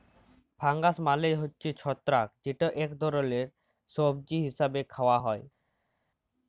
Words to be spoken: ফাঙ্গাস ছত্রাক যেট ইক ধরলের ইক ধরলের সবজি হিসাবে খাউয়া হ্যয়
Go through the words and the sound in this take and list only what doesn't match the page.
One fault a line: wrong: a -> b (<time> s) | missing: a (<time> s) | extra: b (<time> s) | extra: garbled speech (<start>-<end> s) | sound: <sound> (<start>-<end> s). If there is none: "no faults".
extra: মালে হছে (1.1 s)
missing: ইক ধরলের (3.5 s)